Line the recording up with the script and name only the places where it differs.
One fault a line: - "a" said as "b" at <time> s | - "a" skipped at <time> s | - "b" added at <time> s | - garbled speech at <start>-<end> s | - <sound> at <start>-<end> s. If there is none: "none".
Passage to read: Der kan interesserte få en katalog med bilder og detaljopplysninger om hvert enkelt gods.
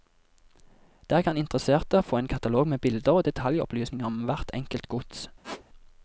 - squeak at 5.4-5.6 s